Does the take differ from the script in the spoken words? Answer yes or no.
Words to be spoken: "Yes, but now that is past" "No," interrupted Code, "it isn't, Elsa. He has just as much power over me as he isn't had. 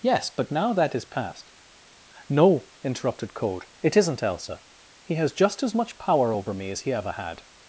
yes